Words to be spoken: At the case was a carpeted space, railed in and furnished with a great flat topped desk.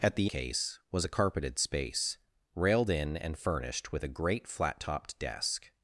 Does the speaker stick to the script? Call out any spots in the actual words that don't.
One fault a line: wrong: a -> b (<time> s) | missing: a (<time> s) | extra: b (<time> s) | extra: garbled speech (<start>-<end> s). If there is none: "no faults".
no faults